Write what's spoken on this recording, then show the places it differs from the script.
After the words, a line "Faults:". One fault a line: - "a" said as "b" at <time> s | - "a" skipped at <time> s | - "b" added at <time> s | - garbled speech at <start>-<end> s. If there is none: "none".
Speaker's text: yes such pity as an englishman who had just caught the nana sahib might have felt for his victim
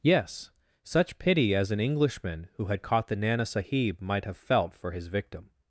yes such pity as an englishman who had caught the nana sahib might have felt for his victim
Faults:
- "just" skipped at 2.8 s